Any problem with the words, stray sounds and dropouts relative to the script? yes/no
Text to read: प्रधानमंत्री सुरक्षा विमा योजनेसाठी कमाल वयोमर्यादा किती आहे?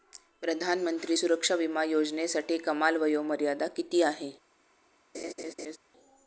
yes